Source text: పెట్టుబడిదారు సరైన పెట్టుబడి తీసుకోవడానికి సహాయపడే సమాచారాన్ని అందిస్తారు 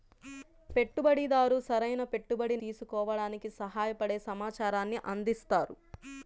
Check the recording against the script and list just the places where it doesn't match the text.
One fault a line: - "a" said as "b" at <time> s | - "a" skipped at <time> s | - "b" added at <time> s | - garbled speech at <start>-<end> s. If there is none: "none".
none